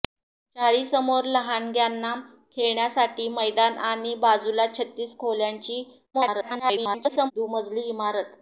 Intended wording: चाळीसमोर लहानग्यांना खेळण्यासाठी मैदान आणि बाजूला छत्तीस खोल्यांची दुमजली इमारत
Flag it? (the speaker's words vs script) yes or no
yes